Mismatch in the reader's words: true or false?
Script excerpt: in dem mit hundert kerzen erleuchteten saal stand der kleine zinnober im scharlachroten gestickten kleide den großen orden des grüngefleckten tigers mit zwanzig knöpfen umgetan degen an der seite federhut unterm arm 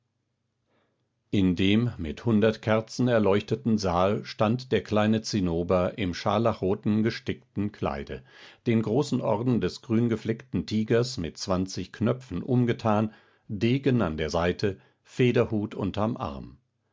false